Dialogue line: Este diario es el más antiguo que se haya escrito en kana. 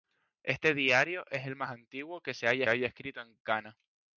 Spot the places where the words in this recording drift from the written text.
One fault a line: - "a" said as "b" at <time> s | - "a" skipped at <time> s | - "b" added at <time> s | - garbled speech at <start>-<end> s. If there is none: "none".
- "haya" added at 2.7 s